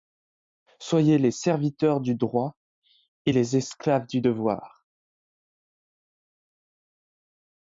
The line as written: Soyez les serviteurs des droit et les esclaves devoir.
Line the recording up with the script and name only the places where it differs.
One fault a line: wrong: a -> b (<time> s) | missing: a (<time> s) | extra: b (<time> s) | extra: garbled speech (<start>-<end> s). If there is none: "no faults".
wrong: des -> du (2.0 s)
extra: du (4.1 s)